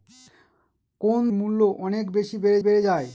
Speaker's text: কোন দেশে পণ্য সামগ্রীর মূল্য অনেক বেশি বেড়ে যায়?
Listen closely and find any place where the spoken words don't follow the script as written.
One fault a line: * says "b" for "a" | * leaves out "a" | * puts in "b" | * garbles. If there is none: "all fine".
* leaves out "দেশে পণ্য সামগ্রীর"
* puts in "বেড়ে"